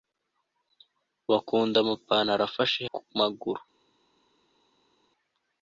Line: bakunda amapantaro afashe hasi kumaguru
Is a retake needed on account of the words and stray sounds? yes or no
yes